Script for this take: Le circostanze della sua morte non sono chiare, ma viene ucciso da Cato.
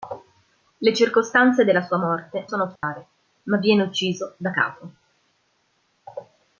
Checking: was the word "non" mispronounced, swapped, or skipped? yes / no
yes